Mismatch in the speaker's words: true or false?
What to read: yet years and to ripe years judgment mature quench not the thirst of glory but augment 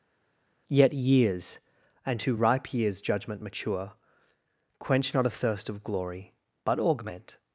true